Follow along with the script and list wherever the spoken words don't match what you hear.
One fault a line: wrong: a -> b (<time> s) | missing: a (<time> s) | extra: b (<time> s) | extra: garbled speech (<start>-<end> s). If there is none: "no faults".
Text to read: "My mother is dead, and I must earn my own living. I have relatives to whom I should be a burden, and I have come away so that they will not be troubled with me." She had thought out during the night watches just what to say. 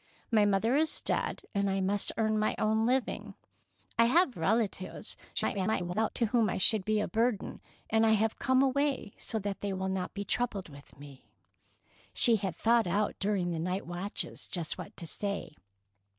extra: garbled speech (5.4-6.1 s)